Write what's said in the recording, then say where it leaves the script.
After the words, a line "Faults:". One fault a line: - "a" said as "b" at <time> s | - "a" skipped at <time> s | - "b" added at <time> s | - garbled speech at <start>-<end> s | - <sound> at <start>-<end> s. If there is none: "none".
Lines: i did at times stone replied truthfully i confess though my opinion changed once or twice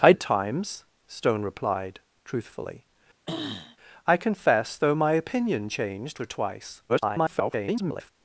i at times stone replied truthfully i confess though my opinion changed or twice [garbled]
Faults:
- "did" skipped at 0.1 s
- throat clearing at 3.3-3.8 s
- "once" skipped at 6.2 s
- garbled speech at 6.9-8.1 s